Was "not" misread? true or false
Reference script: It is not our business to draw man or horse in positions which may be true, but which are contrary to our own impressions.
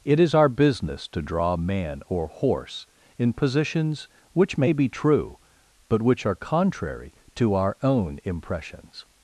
true